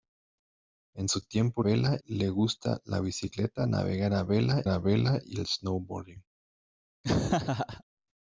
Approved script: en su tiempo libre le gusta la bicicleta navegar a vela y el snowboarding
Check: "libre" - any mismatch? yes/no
yes